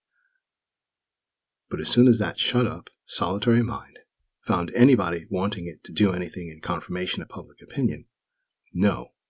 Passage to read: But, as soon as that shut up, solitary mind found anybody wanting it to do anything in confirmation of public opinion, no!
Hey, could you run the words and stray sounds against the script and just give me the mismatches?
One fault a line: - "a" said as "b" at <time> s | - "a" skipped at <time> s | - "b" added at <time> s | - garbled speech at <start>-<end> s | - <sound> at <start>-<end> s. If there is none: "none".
none